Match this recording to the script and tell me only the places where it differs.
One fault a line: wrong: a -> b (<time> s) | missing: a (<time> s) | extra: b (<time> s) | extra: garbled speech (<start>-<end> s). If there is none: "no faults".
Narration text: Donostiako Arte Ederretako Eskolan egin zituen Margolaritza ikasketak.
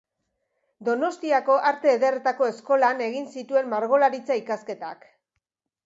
no faults